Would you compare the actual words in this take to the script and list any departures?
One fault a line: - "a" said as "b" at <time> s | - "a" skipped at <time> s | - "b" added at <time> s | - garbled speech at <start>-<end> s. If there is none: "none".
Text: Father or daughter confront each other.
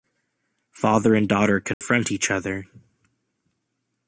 - "or" said as "and" at 1.1 s